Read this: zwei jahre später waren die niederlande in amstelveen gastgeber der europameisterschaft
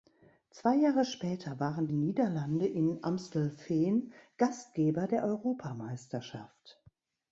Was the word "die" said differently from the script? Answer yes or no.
yes